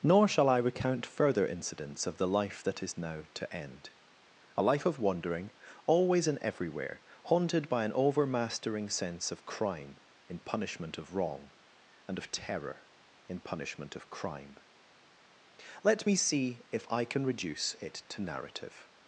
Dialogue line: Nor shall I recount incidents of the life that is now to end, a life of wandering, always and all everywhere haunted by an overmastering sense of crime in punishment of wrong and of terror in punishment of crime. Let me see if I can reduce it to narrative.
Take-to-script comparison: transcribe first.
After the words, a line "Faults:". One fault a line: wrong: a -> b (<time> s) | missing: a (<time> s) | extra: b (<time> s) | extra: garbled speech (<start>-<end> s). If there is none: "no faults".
Nor shall I recount further incidents of the life that is now to end, a life of wandering, always and everywhere haunted by an overmastering sense of crime in punishment of wrong and of terror in punishment of crime. Let me see if I can reduce it to narrative.
Faults:
extra: further (1.1 s)
missing: all (6.4 s)